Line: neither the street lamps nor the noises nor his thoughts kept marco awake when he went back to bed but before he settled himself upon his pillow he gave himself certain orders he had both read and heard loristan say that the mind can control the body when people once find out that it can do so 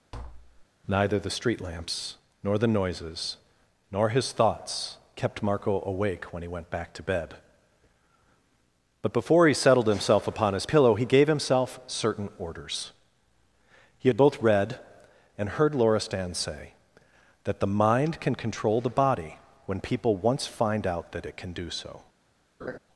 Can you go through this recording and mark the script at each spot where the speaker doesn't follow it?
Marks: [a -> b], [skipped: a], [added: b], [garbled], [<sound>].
[tap] neither the street lamps nor the noises nor his thoughts kept marco awake when he went back to bed but before he settled himself upon his pillow he gave himself certain orders he had both read and heard loristan say that the mind can control the body when people once find out that it can do so [laugh]